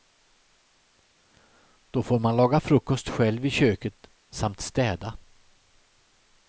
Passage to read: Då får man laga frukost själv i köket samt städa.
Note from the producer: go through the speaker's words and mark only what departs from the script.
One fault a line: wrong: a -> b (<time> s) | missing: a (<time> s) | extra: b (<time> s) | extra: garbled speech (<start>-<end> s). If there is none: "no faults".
no faults